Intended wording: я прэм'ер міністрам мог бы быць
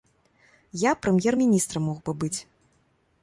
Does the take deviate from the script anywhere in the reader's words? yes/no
no